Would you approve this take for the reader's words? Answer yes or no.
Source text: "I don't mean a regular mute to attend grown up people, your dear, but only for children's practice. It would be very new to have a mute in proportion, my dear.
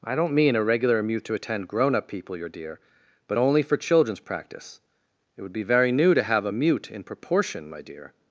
yes